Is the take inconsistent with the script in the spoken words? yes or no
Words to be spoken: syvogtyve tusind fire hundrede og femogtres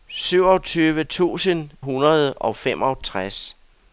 yes